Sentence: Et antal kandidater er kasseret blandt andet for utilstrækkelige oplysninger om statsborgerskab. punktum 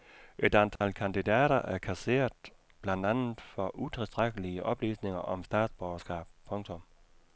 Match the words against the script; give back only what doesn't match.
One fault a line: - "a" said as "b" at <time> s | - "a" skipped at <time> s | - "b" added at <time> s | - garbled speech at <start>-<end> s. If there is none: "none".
none